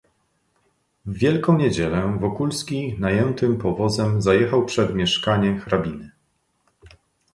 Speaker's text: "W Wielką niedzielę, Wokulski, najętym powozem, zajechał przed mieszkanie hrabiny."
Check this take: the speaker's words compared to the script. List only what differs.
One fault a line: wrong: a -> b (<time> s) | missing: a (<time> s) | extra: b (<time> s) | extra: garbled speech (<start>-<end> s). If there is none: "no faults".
no faults